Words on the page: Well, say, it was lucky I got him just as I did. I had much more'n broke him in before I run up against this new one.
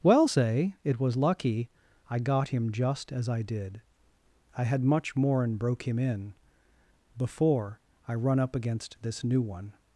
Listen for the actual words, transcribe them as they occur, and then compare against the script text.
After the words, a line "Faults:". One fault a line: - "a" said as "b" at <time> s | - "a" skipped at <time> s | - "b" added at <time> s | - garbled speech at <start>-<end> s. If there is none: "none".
Well, say, it was lucky I got him just as I did. I had much more'n broke him in before I run up against this new one.
Faults:
none